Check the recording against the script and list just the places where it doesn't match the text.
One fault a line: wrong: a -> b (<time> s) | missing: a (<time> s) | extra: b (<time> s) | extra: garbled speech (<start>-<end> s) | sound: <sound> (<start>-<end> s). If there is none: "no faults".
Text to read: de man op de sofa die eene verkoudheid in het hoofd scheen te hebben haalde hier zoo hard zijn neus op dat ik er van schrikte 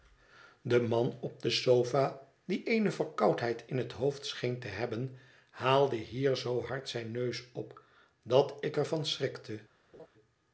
sound: laugh (9.9-10.1 s)